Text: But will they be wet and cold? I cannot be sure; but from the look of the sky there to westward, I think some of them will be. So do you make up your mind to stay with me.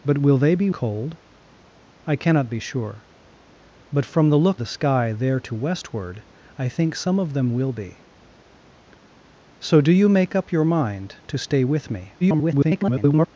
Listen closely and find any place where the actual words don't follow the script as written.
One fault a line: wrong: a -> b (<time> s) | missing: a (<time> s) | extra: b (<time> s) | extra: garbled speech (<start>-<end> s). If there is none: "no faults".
missing: wet and (0.7 s)
missing: of (4.6 s)
extra: garbled speech (12.2-13.3 s)